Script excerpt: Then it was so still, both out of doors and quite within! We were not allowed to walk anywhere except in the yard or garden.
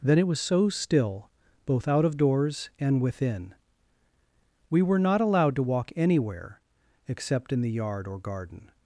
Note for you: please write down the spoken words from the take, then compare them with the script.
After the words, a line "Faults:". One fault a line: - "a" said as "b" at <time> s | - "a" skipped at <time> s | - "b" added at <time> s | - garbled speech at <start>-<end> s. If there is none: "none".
Then it was so still, both out of doors and within! We were not allowed to walk anywhere except in the yard or garden.
Faults:
- "quite" skipped at 3.0 s